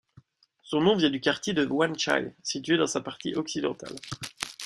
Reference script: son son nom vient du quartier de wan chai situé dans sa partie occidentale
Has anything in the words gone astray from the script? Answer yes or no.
yes